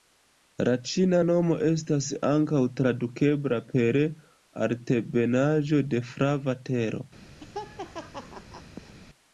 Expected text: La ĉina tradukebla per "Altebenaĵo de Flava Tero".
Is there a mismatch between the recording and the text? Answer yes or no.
yes